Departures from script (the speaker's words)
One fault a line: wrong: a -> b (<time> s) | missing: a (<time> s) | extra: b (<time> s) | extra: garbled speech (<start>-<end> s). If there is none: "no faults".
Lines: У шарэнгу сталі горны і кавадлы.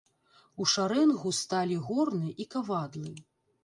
no faults